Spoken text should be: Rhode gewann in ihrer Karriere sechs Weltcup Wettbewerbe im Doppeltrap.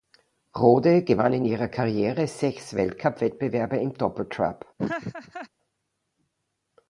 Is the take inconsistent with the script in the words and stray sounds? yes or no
yes